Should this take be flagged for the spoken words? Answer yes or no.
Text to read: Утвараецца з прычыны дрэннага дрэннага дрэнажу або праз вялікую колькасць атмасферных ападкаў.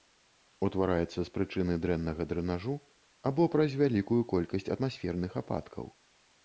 yes